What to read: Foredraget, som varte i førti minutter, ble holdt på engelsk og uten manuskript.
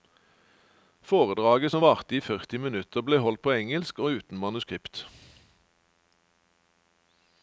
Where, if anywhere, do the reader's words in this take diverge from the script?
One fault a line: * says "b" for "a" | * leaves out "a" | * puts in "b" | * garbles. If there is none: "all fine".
all fine